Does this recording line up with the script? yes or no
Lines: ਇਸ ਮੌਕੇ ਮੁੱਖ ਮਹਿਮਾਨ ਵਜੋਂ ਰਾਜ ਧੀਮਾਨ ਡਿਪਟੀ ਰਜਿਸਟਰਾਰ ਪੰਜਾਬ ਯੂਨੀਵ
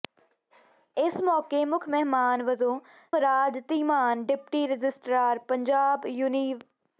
yes